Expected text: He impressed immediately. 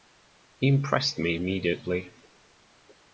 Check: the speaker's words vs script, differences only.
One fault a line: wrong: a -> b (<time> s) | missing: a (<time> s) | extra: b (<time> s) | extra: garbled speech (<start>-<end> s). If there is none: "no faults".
extra: me (1.2 s)